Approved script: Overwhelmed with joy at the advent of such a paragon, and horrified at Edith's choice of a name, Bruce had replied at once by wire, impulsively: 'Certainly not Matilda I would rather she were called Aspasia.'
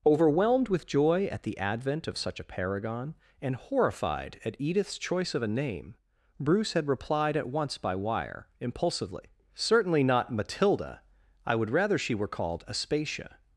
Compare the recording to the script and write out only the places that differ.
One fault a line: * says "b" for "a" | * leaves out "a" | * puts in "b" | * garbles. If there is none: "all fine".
all fine